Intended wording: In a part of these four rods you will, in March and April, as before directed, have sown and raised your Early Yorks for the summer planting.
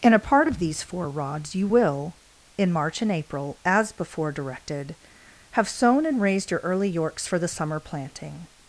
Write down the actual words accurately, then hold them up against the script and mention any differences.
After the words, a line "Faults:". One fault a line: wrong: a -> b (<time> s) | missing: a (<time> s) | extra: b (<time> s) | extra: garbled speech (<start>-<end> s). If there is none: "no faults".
In a part of these four rods you will, in March and April, as before directed, have sown and raised your Early Yorks for the summer planting.
Faults:
no faults